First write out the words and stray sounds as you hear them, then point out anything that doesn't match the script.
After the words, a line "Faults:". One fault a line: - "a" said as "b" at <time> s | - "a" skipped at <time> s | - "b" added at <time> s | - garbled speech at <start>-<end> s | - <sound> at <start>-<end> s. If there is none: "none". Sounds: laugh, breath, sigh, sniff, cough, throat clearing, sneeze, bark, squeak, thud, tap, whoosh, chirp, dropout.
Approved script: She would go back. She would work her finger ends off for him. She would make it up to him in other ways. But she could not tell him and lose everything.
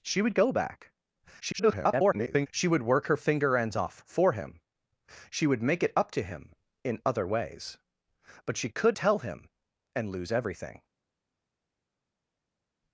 She would go back. [garbled] She would work her finger ends off for him. She would make it up to him in other ways. But she could tell him and lose everything.
Faults:
- garbled speech at 1.4-2.5 s
- "not" skipped at 9.0 s